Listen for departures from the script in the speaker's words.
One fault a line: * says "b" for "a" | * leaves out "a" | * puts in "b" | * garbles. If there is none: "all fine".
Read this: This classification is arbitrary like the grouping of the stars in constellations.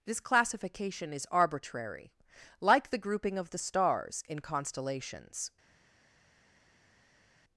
all fine